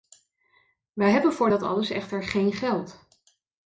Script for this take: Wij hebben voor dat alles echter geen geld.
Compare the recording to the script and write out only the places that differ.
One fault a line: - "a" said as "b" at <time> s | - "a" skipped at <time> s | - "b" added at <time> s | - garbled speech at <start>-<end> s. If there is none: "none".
none